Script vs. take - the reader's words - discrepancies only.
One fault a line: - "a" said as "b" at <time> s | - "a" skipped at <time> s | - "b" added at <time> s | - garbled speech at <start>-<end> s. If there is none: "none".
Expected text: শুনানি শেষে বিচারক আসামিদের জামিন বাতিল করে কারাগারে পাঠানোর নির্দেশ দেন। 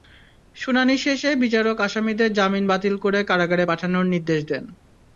none